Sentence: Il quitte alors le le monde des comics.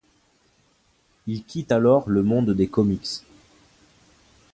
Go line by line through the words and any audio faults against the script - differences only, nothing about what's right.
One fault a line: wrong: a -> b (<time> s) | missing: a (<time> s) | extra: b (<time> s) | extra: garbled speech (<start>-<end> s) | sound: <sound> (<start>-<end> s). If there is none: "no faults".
missing: le (2.2 s)